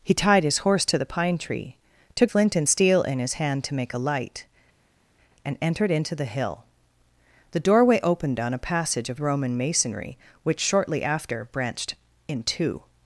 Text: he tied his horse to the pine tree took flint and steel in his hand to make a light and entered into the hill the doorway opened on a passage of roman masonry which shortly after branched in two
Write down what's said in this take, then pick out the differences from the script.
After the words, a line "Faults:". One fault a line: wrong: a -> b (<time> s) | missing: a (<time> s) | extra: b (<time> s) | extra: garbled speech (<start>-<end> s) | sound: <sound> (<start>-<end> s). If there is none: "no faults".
he tied his horse to the pine tree took flint and steel in his hand to make a light and entered into the hill the doorway opened on a passage of roman masonry which shortly after branched in two
Faults:
no faults